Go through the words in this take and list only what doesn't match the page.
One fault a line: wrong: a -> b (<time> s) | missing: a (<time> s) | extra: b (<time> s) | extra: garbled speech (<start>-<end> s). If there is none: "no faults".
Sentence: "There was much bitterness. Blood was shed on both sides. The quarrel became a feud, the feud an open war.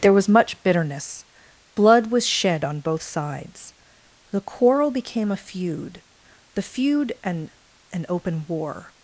extra: an (7.9 s)